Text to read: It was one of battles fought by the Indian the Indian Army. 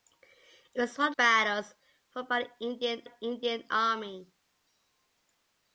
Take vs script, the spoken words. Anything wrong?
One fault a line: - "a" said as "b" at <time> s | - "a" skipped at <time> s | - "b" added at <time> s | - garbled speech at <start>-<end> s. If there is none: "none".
none